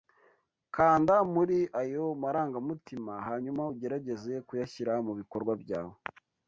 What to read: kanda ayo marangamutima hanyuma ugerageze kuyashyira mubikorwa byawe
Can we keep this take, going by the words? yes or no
no